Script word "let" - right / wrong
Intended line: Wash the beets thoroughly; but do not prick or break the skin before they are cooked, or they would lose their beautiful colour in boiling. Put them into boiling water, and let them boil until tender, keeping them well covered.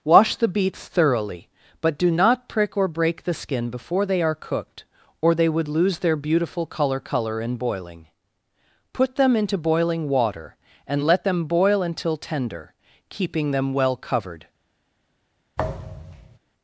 right